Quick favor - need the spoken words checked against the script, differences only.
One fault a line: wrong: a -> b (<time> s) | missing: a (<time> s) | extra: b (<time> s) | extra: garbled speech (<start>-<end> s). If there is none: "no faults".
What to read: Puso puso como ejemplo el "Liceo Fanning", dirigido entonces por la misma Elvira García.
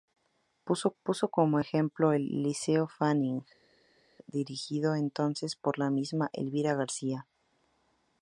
no faults